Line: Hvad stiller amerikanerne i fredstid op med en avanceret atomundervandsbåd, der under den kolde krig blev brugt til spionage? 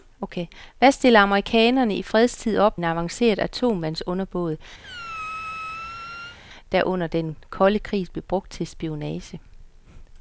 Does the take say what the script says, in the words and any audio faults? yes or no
no